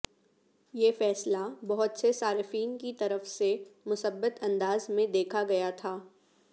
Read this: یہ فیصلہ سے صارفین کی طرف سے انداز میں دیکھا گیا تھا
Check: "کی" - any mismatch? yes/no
no